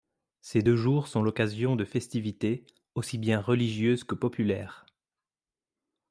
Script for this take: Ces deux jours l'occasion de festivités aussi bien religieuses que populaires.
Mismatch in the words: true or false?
true